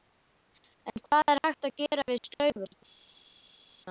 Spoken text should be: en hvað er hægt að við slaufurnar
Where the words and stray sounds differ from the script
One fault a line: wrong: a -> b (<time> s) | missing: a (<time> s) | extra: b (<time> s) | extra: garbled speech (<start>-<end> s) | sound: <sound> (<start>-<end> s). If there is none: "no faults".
extra: gera (1.9 s)